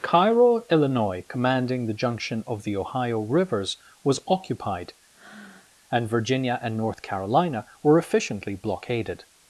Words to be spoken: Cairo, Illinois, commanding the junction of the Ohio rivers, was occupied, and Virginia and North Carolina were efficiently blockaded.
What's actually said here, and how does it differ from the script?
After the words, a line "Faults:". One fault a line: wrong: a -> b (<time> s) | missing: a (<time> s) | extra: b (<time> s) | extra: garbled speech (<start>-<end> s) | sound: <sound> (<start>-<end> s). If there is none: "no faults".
Cairo, Illinois, commanding the junction of the Ohio rivers, was occupied, and Virginia and North Carolina were efficiently blockaded.
Faults:
sound: breath (5.1-5.7 s)